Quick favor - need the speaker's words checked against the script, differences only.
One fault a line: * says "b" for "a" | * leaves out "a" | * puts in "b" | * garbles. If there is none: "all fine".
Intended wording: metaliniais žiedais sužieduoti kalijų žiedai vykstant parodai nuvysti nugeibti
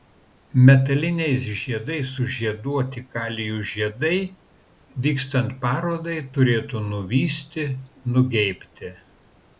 * puts in "turėtų"